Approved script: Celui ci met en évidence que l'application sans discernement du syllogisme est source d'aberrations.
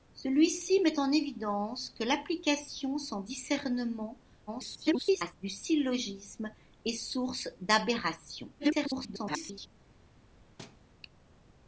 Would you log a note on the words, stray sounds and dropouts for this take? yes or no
yes